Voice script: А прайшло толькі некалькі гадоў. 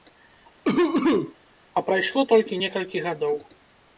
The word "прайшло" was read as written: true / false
true